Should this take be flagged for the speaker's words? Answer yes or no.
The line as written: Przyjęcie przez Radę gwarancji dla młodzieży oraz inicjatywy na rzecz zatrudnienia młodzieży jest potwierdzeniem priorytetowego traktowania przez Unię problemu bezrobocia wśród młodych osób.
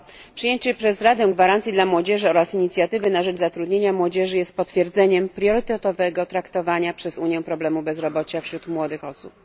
no